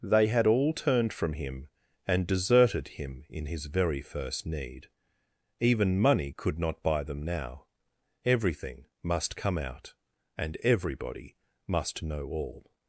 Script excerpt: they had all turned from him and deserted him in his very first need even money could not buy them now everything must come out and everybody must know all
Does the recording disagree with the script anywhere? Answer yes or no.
no